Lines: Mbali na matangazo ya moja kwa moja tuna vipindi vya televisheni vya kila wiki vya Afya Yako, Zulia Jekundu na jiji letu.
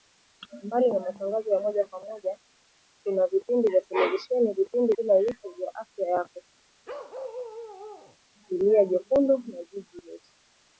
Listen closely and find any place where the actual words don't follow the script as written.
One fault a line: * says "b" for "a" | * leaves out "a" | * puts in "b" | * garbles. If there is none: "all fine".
* says "vipindi" for "vya"